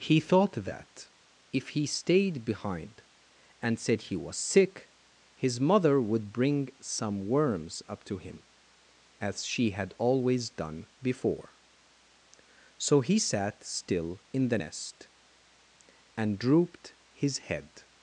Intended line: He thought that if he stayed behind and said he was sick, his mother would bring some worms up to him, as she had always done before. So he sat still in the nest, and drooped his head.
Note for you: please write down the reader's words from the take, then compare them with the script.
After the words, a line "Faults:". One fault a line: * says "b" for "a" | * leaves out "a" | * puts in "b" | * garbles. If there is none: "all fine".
He thought that if he stayed behind and said he was sick, his mother would bring some worms up to him, as she had always done before. So he sat still in the nest, and drooped his head.
Faults:
all fine